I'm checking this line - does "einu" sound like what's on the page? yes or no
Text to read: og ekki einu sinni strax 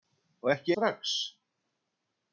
no